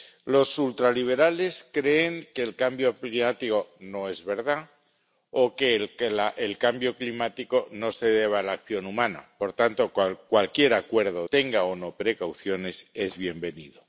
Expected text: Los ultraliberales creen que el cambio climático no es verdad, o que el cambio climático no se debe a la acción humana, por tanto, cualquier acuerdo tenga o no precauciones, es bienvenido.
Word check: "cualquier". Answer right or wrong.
right